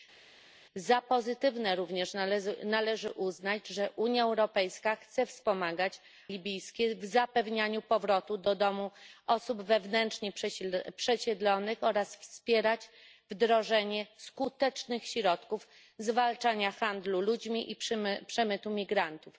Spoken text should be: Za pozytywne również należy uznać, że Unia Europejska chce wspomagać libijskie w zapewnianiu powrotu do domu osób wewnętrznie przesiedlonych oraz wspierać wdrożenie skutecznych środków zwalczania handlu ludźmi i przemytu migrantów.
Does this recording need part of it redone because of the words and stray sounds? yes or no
no